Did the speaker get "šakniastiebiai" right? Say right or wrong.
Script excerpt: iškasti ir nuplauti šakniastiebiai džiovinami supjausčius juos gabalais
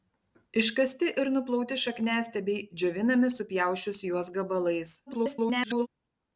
right